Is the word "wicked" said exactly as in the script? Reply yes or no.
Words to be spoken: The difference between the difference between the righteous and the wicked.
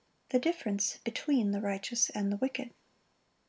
yes